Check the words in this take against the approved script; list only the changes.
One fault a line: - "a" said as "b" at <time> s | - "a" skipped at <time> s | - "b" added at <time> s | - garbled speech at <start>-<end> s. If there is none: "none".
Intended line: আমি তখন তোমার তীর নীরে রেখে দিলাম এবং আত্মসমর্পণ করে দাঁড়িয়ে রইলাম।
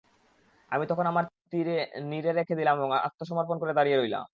- "তোমার" said as "আমার" at 1.1 s